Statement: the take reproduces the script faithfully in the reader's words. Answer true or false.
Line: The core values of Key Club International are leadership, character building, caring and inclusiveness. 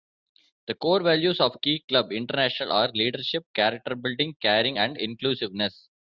true